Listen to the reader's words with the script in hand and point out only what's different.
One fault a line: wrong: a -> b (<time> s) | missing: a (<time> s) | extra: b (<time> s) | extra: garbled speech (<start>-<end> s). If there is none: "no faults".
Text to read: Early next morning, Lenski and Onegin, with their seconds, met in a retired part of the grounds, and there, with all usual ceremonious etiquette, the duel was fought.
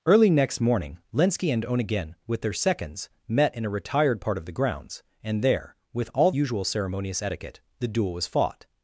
no faults